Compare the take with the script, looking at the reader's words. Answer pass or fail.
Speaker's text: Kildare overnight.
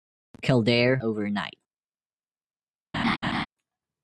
pass